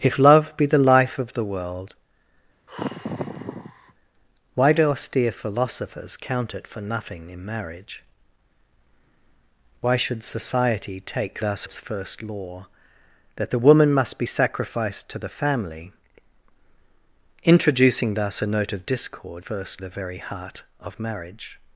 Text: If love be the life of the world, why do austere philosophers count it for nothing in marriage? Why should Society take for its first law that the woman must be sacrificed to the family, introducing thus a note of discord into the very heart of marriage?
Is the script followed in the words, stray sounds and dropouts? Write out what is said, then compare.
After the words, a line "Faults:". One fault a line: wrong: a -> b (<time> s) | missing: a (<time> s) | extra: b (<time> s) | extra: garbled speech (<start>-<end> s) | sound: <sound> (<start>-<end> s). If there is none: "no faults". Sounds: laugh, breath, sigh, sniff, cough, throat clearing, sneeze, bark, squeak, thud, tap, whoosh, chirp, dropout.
If love be the life of the world, why do austere philosophers count it for nothing in marriage? Why should Society take thus its first law that the woman must be sacrificed to the family, introducing thus a note of discord first the very heart of marriage?
Faults:
sound: sigh (2.7-3.9 s)
wrong: for -> thus (11.4 s)
wrong: into -> first (19.4 s)